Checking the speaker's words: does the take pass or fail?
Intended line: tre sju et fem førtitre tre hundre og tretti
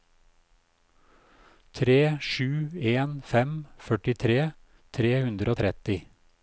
fail